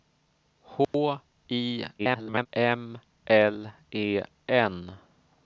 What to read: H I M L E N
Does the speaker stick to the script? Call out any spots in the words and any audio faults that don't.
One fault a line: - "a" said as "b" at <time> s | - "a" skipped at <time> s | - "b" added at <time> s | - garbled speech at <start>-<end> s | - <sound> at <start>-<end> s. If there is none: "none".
- dropout at 0.8-0.9 s
- garbled speech at 2.0-2.5 s